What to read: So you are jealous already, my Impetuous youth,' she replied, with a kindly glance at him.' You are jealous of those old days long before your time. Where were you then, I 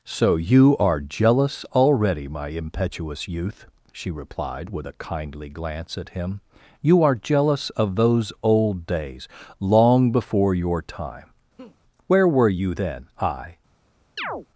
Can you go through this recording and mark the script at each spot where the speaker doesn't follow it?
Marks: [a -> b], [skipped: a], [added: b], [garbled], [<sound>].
So you are jealous already, my Impetuous youth,' she replied, with a kindly glance at him.' You are jealous of those old days long before your time. [laugh] Where were you then, I [chirp]